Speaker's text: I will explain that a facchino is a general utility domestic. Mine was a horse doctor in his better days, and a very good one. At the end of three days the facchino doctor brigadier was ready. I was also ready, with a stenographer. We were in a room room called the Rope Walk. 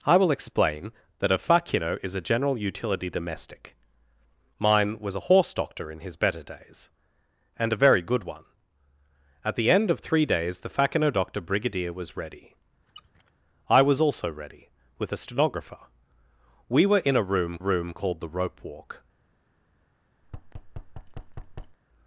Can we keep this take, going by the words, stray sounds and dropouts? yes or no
no